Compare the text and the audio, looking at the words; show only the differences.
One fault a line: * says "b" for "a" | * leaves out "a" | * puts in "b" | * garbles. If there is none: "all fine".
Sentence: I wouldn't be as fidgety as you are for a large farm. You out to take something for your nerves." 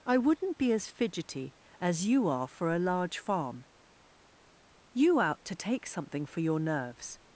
all fine